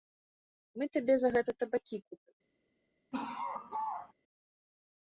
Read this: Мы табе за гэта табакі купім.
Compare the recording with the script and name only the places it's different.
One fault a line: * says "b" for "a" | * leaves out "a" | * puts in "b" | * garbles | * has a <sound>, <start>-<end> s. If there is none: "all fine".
* has a laugh, 3.1-4.1 s